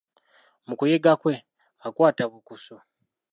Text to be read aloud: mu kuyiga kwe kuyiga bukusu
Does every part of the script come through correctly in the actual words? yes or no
no